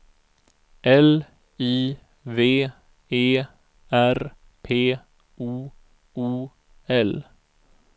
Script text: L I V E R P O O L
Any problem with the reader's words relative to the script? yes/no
no